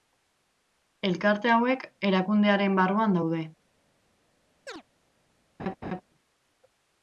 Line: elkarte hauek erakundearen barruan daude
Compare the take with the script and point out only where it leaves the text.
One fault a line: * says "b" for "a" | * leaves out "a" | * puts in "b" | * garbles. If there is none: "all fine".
all fine